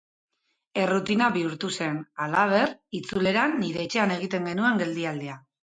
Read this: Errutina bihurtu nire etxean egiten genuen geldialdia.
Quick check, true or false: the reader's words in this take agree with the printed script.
false